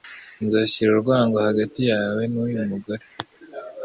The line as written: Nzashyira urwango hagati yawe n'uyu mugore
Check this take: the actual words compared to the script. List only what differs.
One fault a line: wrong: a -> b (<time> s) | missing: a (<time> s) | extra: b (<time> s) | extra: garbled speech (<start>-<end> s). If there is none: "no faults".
no faults